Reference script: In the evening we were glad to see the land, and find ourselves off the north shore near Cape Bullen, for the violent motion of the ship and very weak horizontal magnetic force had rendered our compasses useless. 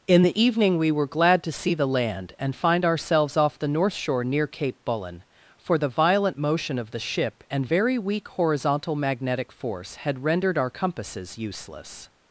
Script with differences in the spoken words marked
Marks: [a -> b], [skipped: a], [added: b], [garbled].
In the evening we were glad to see the land, and find ourselves off the north shore near Cape Bullen, for the violent motion of the ship and very weak horizontal magnetic force had rendered our compasses useless.